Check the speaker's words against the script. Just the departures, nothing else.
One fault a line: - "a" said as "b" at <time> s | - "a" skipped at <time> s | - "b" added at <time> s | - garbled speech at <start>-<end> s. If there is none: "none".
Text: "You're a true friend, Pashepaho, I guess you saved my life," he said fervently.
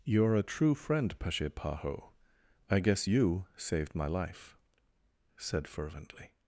- "he" skipped at 4.5 s